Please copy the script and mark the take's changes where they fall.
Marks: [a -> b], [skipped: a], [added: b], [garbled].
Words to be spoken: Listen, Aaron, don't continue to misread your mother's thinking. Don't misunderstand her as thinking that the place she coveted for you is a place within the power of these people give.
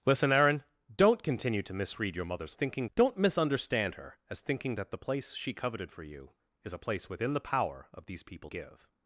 Listen, Aaron, don't continue to misread your mother's thinking. Don't misunderstand her as thinking that the place she coveted for you is a place within the power of these people give.